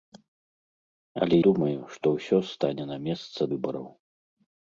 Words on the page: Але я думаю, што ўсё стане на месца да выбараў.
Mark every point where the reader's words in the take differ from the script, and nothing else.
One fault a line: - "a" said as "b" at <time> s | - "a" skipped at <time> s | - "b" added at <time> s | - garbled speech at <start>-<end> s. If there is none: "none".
- "я" skipped at 1.4 s
- "да" skipped at 3.5 s